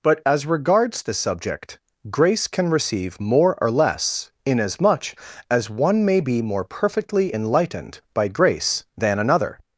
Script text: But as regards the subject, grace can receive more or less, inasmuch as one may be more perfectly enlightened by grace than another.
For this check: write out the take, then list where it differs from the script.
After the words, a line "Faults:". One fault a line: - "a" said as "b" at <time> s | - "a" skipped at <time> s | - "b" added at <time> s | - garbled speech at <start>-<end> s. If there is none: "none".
But as regards the subject, grace can receive more or less, inasmuch as one may be more perfectly enlightened by grace than another.
Faults:
none